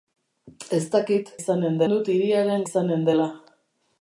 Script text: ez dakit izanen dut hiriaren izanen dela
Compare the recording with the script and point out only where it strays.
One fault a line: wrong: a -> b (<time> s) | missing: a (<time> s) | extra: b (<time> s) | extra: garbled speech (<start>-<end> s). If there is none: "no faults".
no faults